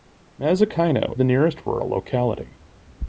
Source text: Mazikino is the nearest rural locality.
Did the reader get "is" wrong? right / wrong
wrong